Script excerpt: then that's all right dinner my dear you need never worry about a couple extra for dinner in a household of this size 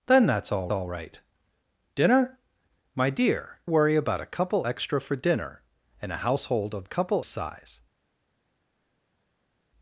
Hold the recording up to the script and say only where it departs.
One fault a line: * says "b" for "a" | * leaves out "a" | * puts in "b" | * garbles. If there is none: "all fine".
* puts in "all"
* leaves out "you need never"
* says "couple" for "this"